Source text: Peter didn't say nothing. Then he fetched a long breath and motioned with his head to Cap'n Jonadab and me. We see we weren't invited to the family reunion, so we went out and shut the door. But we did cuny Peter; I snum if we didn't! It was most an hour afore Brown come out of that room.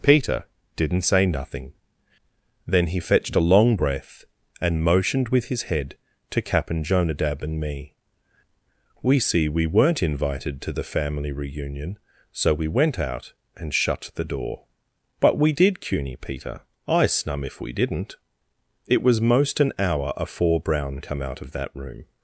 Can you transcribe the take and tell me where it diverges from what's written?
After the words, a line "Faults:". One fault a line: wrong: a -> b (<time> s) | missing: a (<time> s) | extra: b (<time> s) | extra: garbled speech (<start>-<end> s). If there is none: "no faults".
Peter didn't say nothing. Then he fetched a long breath and motioned with his head to Cap'n Jonadab and me. We see we weren't invited to the family reunion, so we went out and shut the door. But we did cuny Peter; I snum if we didn't! It was most an hour afore Brown come out of that room.
Faults:
no faults